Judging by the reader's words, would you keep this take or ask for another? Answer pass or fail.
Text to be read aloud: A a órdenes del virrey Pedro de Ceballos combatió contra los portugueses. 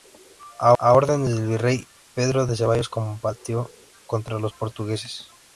pass